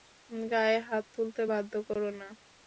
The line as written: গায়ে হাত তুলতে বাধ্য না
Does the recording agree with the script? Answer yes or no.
no